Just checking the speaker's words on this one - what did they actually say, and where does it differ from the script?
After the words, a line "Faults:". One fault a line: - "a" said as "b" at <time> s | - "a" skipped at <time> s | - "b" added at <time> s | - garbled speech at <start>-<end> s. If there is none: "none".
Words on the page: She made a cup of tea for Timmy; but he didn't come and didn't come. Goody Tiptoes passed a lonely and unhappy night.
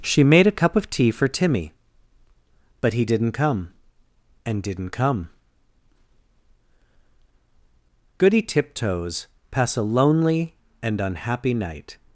She made a cup of tea for Timmy; but he didn't come and didn't come. Goody Tiptoes pass a lonely and unhappy night.
Faults:
- "passed" said as "pass" at 9.5 s